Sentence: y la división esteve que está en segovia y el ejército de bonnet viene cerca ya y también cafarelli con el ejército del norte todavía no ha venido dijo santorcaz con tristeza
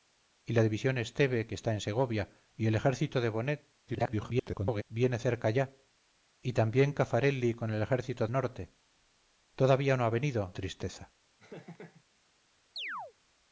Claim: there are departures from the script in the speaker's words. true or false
true